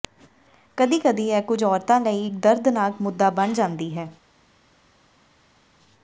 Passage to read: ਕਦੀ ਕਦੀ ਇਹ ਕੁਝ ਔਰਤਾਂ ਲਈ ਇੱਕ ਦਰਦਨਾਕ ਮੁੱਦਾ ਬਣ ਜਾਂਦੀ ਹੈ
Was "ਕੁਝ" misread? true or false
false